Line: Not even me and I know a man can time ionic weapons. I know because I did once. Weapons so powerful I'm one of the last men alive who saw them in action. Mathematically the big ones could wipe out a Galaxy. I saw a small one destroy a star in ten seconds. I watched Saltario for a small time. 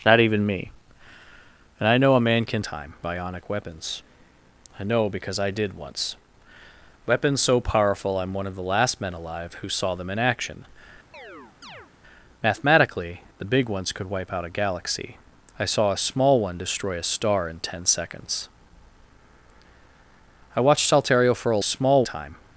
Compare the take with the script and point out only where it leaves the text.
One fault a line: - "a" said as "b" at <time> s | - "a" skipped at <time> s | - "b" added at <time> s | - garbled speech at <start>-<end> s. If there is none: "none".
none